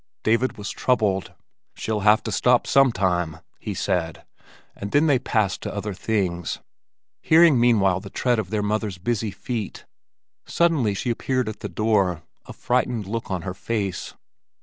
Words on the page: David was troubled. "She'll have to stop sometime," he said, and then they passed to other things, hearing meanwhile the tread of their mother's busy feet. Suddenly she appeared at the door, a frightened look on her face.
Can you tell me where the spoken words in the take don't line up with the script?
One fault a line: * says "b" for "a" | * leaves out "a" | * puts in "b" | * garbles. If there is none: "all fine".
all fine